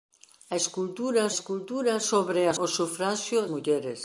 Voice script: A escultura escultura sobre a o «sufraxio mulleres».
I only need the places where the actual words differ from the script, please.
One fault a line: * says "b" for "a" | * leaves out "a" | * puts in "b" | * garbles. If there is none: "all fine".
all fine